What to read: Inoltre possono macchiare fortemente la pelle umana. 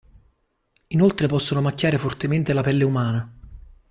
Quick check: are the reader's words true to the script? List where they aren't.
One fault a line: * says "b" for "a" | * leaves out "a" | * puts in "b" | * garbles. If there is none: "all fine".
all fine